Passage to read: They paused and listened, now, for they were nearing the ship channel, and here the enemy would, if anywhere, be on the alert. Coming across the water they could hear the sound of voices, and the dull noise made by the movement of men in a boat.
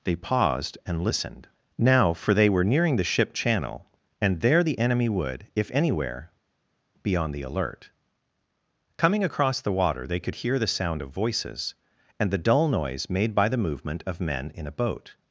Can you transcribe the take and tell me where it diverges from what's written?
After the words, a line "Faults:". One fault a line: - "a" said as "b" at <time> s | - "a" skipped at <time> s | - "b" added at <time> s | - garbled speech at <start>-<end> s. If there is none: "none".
They paused and listened, now, for they were nearing the ship channel, and there the enemy would, if anywhere, be on the alert. Coming across the water they could hear the sound of voices, and the dull noise made by the movement of men in a boat.
Faults:
- "here" said as "there" at 4.4 s